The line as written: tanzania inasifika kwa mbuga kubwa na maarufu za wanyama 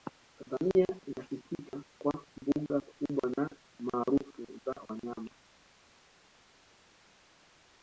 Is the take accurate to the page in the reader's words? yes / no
yes